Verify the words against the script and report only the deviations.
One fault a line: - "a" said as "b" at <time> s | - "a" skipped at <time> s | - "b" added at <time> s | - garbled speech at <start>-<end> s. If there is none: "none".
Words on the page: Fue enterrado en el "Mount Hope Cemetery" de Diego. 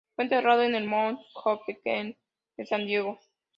- "San" added at 2.6 s